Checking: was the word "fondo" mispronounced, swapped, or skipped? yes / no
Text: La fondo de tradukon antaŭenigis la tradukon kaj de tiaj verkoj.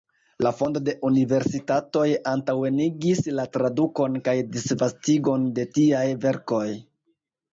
no